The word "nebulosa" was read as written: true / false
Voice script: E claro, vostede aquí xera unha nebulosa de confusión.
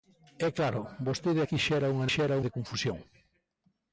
false